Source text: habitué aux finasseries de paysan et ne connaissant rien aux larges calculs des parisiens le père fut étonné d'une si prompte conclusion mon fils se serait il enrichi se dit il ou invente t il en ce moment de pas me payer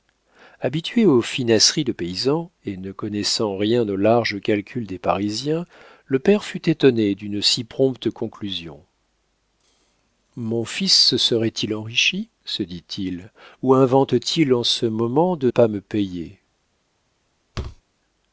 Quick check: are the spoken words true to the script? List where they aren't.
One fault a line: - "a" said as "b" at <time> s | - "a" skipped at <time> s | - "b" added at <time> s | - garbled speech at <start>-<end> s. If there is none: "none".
none